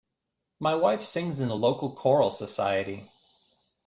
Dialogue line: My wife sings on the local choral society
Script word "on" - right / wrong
wrong